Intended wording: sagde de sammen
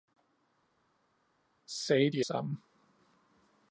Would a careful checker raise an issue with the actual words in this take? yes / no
no